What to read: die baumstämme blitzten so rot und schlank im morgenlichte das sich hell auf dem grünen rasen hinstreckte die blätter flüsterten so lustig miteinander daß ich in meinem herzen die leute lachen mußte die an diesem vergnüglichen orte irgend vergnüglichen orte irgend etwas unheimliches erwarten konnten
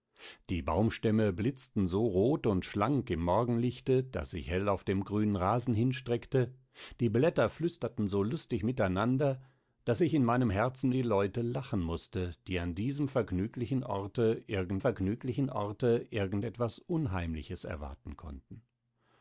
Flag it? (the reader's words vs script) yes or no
no